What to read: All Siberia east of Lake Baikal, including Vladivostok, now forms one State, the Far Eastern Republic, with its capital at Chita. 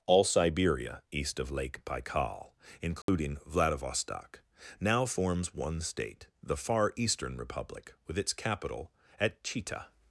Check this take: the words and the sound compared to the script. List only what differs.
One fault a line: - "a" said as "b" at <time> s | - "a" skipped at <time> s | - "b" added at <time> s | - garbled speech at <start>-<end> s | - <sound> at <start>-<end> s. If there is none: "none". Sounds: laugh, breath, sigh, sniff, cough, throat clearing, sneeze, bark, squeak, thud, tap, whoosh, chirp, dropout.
- dropout at 3.0-3.1 s